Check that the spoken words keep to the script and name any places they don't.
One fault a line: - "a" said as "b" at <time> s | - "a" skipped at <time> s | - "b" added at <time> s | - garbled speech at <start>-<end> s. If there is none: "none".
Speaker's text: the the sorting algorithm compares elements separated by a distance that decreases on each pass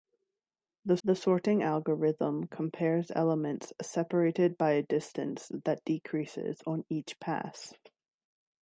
none